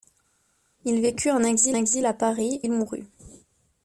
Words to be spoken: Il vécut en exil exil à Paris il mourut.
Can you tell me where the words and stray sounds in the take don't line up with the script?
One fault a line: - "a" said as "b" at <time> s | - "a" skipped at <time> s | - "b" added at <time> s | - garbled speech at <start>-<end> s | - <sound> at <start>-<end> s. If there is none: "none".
none